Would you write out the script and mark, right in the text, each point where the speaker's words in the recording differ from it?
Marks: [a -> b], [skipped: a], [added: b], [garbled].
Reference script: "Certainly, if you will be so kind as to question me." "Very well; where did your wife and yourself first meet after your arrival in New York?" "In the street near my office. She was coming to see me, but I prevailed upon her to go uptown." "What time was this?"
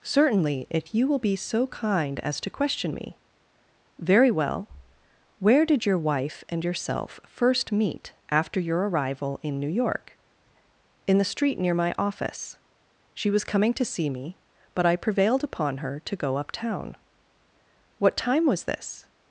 "Certainly, if you will be so kind as to question me." "Very well; where did your wife and yourself first meet after your arrival in New York?" "In the street near my office. She was coming to see me, but I prevailed upon her to go uptown." "What time was this?"